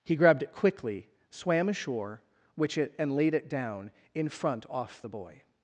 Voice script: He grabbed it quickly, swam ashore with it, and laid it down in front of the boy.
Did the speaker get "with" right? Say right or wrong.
wrong